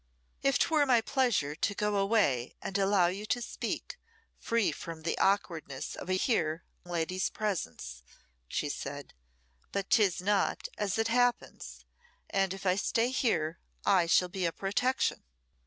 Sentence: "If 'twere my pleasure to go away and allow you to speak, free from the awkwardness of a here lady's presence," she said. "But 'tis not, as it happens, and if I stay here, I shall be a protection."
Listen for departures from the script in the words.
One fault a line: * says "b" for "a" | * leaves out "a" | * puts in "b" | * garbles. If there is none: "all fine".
all fine